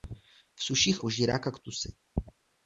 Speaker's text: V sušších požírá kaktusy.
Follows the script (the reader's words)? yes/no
yes